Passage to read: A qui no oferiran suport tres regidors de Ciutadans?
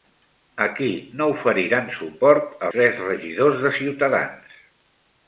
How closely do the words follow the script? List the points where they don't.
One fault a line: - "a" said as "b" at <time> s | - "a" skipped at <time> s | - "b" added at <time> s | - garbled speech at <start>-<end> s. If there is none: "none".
none